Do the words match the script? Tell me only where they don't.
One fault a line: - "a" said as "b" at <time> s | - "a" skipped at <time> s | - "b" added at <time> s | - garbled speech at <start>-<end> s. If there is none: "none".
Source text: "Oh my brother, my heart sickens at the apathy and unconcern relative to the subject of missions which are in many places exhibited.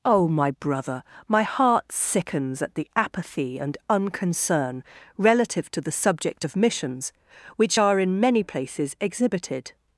none